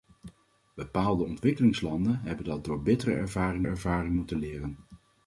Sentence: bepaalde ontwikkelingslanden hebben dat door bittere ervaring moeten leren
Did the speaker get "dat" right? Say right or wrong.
right